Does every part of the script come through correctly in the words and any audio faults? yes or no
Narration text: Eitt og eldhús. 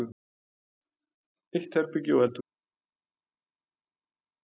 no